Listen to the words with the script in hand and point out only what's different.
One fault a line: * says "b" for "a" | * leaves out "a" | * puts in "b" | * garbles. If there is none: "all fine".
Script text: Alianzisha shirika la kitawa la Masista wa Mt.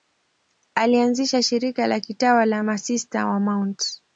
all fine